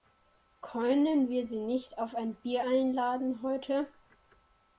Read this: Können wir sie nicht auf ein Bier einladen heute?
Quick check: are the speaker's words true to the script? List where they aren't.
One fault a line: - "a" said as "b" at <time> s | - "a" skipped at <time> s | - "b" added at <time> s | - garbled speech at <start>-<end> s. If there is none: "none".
none